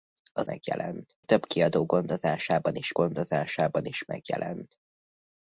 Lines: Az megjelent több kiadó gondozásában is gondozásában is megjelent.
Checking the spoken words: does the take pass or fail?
pass